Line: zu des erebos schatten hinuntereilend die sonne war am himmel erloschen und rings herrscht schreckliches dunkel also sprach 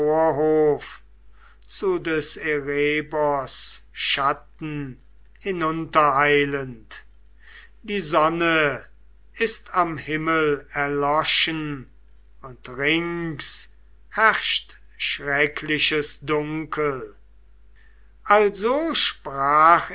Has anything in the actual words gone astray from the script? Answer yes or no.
yes